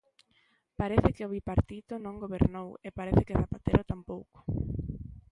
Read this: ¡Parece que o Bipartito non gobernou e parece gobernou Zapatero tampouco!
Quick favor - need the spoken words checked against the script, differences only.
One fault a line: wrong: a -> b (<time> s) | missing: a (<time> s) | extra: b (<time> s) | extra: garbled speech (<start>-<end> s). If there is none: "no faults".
wrong: gobernou -> que (3.3 s)